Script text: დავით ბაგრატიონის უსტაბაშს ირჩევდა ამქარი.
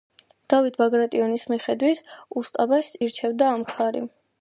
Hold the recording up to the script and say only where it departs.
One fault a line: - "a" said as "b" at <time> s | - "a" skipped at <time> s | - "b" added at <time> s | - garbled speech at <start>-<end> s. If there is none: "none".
- "მიხედვით" added at 1.5 s